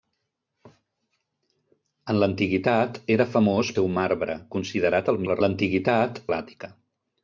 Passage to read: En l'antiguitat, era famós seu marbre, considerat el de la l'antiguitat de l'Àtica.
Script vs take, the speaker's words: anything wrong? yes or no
no